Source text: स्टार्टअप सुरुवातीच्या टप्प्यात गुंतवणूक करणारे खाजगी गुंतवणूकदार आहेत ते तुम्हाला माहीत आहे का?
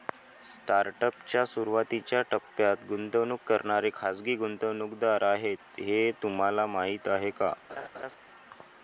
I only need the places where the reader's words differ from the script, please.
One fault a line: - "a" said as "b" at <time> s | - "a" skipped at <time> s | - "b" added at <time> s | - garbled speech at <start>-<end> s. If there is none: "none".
- "च्या" added at 1.3 s
- "ते" said as "हे" at 5.8 s